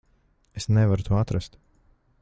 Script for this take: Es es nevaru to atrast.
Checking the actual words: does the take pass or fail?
fail